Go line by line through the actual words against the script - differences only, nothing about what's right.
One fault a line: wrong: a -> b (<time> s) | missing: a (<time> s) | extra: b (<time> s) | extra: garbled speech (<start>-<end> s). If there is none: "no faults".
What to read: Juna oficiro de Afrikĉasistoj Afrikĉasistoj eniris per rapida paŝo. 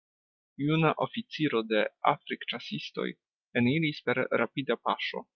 missing: Afrikĉasistoj (3.0 s)